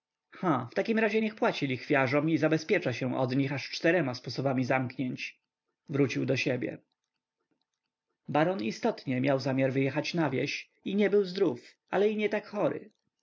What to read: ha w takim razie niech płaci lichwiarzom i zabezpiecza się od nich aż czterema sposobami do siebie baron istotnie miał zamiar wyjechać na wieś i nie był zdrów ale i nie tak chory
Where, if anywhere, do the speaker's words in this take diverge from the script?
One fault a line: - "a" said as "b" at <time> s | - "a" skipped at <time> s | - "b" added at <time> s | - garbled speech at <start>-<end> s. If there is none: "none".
- "zamknięć wrócił" added at 4.6 s